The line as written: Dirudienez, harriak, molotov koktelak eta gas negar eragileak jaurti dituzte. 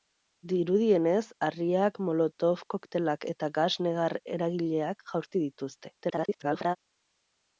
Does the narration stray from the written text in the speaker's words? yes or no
yes